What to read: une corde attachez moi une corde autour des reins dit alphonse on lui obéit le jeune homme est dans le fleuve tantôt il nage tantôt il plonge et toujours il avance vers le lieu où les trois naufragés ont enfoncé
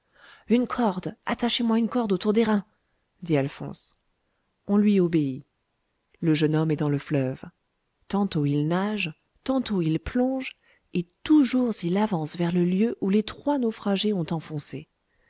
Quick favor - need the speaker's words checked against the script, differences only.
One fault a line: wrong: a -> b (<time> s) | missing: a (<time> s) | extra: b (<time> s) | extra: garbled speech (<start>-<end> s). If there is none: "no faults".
no faults